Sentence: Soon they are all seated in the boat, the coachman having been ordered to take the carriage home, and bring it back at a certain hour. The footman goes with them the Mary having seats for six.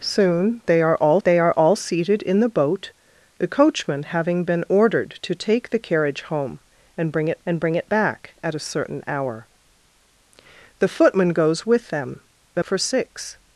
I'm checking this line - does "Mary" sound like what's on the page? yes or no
no